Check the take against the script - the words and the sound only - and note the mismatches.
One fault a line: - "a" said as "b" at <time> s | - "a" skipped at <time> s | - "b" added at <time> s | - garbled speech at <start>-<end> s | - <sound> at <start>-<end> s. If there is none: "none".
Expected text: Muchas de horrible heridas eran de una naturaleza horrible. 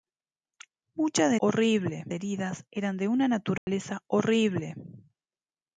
- dropout at 3.6-3.7 s